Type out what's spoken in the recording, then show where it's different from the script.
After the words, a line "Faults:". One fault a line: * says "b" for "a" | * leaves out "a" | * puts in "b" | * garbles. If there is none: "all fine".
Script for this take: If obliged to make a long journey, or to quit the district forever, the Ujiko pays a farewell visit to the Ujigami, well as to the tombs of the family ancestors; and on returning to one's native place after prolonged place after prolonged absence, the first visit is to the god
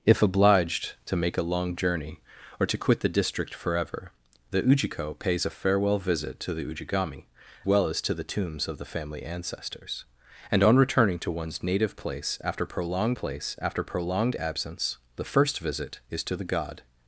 If obliged to make a long journey, or to quit the district forever, the Ujiko pays a farewell visit to the Ujigami, well as to the tombs of the family ancestors; and on returning to one's native place after prolonged place after prolonged absence, the first visit is to the god
Faults:
all fine